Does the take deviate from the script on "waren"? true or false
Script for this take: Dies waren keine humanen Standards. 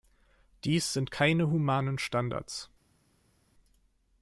true